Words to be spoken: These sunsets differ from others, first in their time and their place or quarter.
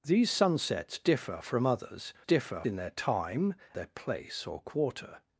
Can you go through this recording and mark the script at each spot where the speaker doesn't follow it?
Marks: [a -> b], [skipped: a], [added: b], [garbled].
These sunsets differ from others, [first -> differ] in their time [skipped: and] their place or quarter.